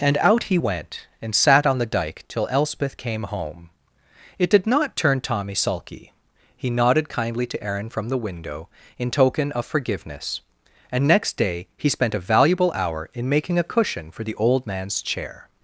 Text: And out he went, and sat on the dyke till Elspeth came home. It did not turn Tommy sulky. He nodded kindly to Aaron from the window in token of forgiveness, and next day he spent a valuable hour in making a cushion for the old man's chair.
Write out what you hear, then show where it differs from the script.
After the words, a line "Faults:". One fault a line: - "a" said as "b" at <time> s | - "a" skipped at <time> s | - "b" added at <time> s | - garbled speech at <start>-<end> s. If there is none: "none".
And out he went, and sat on the dyke till Elspeth came home. It did not turn Tommy sulky. He nodded kindly to Aaron from the window in token of forgiveness, and next day he spent a valuable hour in making a cushion for the old man's chair.
Faults:
none